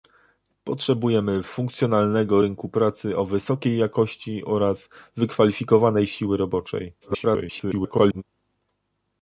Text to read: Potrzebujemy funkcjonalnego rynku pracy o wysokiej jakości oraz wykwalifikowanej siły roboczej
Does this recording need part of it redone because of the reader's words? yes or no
yes